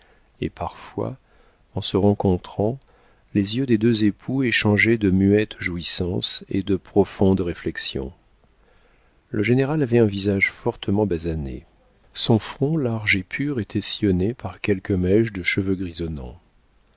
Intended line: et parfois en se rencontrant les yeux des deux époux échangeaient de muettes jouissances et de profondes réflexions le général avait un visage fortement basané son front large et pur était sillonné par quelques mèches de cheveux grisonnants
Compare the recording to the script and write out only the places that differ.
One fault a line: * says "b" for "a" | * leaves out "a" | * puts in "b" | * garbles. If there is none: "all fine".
all fine